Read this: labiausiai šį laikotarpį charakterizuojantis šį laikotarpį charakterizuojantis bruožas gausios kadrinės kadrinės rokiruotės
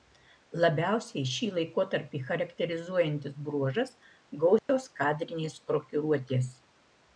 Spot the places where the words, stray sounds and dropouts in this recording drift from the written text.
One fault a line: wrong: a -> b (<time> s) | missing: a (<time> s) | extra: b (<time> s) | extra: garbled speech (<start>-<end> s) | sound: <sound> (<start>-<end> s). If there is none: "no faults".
missing: šį laikotarpį charakterizuojantis (3.4 s)
sound: dropout (4.6-4.7 s)
missing: kadrinės (5.6 s)